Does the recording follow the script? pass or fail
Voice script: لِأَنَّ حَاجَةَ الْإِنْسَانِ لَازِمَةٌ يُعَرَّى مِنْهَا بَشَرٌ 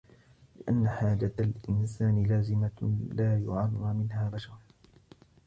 fail